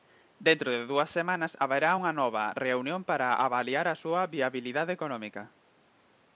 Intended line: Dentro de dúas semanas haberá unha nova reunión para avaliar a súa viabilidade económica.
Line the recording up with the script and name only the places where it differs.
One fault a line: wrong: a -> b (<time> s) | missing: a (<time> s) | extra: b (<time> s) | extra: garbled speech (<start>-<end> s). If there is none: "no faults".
no faults